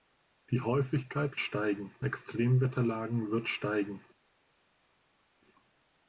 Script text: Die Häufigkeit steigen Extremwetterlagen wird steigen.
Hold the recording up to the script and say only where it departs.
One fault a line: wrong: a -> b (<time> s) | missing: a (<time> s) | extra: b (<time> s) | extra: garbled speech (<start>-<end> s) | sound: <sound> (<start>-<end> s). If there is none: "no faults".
no faults